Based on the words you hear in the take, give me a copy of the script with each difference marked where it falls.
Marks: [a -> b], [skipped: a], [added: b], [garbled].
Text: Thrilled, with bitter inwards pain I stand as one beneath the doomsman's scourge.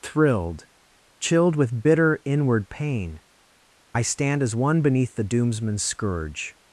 Thrilled, [added: chilled] with bitter [inwards -> inward] pain I stand as one beneath the doomsman's scourge.